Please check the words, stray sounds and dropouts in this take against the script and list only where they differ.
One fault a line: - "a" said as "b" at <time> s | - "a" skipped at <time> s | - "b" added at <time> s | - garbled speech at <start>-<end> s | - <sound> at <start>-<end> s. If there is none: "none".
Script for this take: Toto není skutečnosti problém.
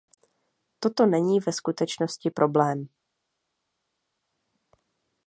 - "ve" added at 1.4 s